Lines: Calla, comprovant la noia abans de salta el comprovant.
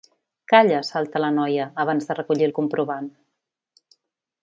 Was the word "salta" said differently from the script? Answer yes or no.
yes